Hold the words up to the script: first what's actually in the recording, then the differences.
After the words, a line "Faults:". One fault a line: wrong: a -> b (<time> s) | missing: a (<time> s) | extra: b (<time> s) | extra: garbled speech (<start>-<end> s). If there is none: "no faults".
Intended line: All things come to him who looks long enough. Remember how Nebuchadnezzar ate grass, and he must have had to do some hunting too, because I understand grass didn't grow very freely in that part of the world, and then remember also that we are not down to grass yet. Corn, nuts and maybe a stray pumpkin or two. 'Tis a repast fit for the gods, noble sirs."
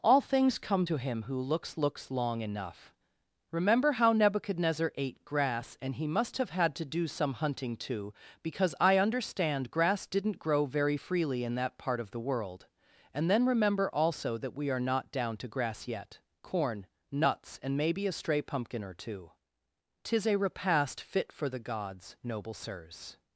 All things come to him who looks looks long enough. Remember how Nebuchadnezzar ate grass, and he must have had to do some hunting too, because I understand grass didn't grow very freely in that part of the world, and then remember also that we are not down to grass yet. Corn, nuts and maybe a stray pumpkin or two. 'Tis a repast fit for the gods, noble sirs."
Faults:
extra: looks (1.8 s)